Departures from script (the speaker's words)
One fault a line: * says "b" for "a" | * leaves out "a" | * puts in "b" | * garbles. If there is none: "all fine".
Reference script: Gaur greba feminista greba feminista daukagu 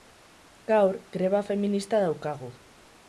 * leaves out "greba feminista"